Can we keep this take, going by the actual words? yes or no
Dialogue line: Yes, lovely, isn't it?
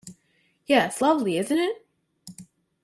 yes